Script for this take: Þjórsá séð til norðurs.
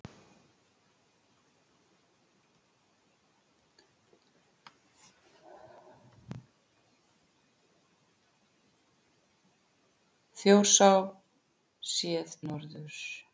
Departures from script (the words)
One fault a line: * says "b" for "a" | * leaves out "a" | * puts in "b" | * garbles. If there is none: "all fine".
* leaves out "til"